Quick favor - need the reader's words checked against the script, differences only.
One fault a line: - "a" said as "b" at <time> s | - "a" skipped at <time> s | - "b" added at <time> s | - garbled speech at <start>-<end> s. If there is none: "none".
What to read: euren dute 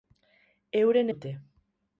none